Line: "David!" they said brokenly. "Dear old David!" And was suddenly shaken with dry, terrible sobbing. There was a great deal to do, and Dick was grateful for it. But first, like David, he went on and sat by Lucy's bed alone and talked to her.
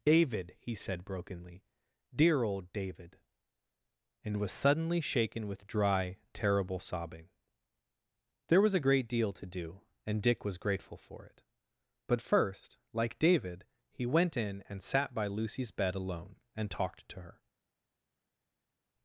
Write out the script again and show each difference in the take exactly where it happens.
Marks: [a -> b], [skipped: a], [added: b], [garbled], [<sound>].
"David!" [they -> he] said brokenly. "Dear old David!" And was suddenly shaken with dry, terrible sobbing. There was a great deal to do, and Dick was grateful for it. But first, like David, he went [on -> in] and sat by Lucy's bed alone and talked to her.